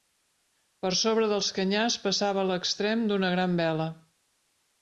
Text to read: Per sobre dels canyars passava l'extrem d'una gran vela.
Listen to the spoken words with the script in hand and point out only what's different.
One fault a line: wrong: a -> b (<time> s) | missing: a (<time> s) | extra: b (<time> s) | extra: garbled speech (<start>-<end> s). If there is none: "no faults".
no faults